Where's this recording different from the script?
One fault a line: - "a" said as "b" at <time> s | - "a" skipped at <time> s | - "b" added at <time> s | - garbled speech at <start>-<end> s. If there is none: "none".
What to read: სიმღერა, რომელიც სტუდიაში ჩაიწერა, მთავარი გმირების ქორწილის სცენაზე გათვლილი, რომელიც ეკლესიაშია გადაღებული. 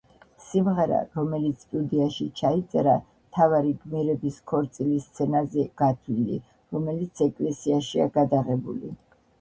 none